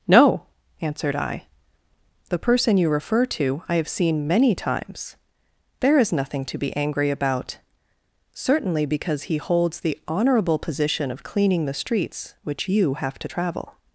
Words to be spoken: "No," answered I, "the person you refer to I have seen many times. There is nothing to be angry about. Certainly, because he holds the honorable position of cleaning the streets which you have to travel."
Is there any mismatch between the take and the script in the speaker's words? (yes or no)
no